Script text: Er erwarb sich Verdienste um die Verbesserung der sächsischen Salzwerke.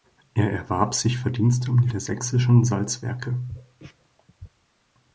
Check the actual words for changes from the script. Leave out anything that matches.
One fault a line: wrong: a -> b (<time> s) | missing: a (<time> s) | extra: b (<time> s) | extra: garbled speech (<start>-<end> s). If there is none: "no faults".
missing: Verbesserung (1.9 s)